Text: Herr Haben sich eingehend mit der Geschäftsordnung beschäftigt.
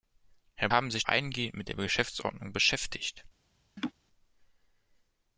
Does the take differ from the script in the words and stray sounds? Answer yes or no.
yes